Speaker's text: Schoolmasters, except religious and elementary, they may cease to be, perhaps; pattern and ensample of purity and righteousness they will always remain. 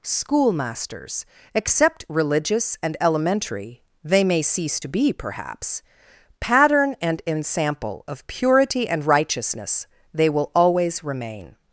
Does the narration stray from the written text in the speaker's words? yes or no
no